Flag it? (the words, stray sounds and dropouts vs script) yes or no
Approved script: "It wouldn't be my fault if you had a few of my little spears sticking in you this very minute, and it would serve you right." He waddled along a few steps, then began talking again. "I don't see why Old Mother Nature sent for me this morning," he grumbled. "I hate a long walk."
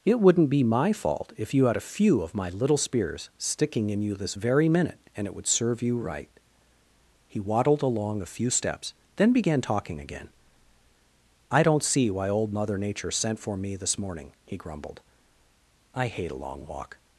no